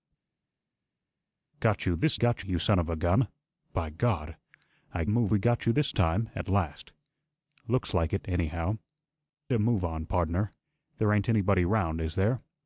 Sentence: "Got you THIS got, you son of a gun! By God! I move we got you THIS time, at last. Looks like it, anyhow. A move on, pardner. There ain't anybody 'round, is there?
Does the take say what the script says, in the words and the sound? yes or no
yes